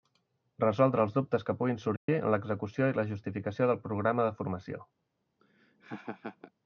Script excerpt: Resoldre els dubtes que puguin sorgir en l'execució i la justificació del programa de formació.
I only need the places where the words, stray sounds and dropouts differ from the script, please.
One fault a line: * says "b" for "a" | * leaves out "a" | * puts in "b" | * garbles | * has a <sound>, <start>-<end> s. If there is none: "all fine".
* has a dropout, 2.0-2.1 s
* has a laugh, 5.4-6.5 s